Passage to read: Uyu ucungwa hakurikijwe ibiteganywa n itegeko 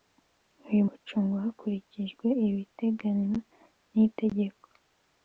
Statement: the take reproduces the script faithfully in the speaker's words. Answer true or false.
true